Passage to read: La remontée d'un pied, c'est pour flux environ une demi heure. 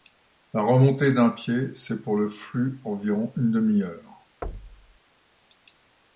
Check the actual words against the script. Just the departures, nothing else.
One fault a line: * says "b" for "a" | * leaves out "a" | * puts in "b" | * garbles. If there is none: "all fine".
* puts in "le"